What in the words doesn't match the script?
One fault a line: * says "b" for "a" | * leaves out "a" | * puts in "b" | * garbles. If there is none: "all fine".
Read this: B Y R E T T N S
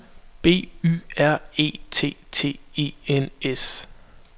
* puts in "E"